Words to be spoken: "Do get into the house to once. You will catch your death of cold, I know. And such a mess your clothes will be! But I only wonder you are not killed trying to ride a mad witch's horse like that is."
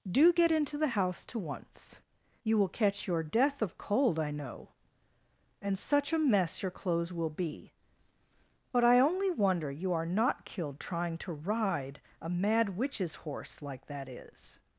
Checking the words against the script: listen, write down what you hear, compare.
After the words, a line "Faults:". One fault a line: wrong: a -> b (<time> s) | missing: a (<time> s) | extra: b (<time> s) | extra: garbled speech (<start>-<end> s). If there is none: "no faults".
"Do get into the house to once. You will catch your death of cold, I know. And such a mess your clothes will be! But I only wonder you are not killed trying to ride a mad witch's horse like that is."
Faults:
no faults